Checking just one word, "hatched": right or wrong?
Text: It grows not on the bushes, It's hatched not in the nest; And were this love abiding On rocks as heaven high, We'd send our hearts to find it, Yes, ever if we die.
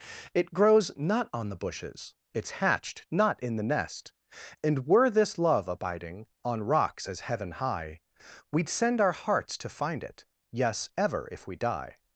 right